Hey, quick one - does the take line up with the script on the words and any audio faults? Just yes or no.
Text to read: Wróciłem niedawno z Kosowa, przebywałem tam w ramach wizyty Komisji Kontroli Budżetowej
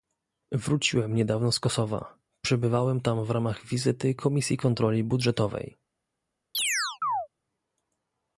no